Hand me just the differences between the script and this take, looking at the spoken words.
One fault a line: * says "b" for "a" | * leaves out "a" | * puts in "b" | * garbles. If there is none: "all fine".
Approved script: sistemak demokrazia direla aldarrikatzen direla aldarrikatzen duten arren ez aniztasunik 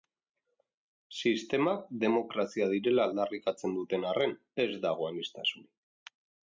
* leaves out "direla aldarrikatzen"
* puts in "dago"